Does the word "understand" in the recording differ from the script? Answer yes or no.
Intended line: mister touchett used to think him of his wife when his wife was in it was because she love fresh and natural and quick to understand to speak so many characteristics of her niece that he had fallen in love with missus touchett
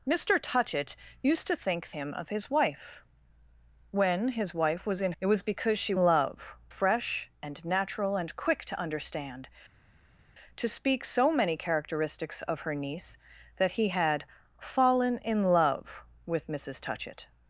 no